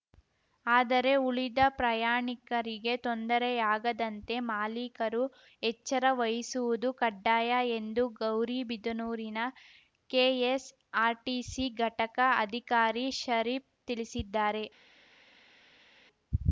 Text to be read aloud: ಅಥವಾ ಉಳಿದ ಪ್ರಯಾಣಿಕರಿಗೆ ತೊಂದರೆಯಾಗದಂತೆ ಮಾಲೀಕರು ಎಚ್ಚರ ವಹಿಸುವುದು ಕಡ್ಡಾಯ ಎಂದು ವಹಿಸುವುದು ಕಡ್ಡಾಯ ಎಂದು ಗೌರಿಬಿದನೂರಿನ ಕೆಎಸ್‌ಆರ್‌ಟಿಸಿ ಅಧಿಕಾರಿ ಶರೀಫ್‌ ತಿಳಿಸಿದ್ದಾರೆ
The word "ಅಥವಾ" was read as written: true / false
false